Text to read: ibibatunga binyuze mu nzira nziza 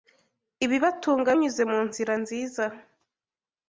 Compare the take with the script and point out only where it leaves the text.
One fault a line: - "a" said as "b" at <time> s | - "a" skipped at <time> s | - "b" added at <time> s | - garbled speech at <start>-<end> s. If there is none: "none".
none